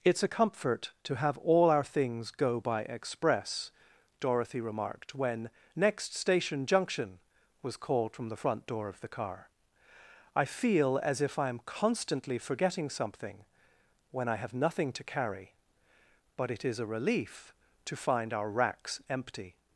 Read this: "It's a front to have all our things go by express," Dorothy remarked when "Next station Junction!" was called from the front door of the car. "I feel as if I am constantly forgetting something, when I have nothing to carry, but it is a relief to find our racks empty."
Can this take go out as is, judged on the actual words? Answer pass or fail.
fail